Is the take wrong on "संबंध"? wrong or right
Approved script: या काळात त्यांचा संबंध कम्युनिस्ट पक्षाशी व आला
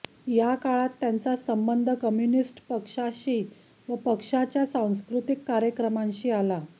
right